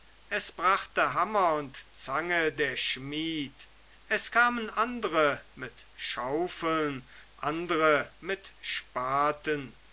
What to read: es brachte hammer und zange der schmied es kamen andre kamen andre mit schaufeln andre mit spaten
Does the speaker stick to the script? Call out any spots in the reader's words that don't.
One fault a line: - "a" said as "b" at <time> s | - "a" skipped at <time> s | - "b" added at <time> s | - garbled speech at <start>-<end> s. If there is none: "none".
- "kamen andre" skipped at 5.4 s